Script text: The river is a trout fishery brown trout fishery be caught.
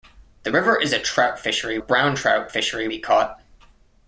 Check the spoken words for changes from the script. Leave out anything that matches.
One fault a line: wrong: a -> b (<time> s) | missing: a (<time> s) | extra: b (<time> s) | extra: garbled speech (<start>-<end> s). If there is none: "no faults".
no faults